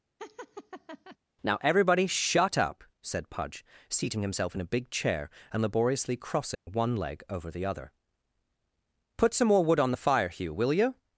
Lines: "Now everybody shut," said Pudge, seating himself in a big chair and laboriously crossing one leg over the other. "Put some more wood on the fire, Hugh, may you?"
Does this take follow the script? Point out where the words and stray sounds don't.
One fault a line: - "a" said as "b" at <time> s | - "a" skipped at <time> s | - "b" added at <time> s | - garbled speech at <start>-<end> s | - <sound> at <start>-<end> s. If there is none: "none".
- laugh at 0.2-1.2 s
- "up" added at 2.6 s
- dropout at 6.5-6.7 s
- "may" said as "will" at 10.5 s